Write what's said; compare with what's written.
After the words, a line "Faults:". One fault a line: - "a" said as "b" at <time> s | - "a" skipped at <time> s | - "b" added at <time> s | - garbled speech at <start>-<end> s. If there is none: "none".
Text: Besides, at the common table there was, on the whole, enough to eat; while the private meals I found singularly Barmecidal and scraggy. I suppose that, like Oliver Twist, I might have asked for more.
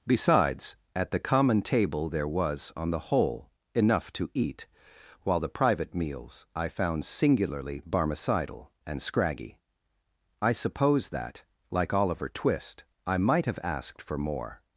Besides, at the common table there was, on the whole, enough to eat; while the private meals I found singularly Barmecidal and scraggy. I suppose that, like Oliver Twist, I might have asked for more.
Faults:
none